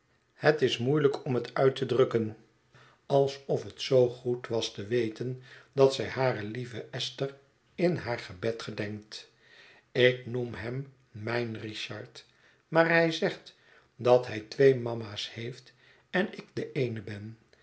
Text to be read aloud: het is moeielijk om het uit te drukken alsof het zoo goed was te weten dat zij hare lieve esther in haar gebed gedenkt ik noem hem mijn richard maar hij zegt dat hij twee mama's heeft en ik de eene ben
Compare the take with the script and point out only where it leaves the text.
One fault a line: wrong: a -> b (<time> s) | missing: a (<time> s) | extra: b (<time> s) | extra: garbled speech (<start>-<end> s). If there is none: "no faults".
no faults